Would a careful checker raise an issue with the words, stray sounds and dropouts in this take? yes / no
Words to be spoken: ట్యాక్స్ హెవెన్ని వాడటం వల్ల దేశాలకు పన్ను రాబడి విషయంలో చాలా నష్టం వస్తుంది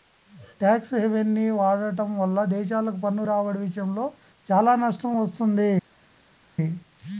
no